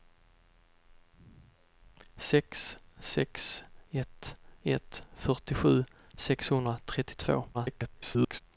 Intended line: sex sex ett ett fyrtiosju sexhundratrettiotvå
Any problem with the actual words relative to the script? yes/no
yes